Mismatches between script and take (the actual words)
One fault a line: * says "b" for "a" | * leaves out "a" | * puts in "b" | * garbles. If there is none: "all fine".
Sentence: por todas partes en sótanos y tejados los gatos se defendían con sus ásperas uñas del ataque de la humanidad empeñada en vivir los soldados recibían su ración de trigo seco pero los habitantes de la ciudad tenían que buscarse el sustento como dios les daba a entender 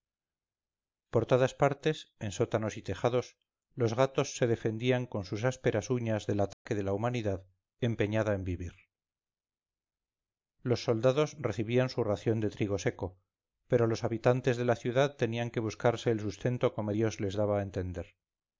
all fine